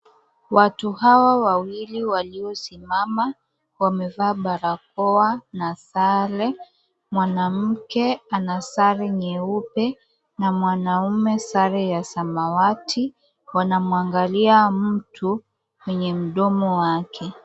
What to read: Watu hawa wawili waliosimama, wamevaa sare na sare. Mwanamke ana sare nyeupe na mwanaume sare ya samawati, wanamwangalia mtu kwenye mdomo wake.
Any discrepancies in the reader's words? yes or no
yes